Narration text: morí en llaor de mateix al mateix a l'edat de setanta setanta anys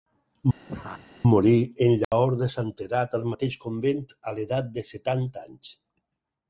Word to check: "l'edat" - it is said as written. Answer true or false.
true